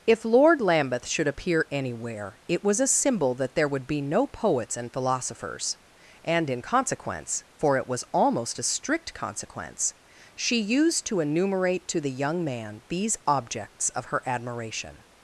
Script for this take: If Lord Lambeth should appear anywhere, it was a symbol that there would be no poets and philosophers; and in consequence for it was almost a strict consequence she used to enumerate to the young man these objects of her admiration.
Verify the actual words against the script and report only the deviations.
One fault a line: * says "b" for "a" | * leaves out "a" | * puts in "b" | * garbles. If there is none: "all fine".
all fine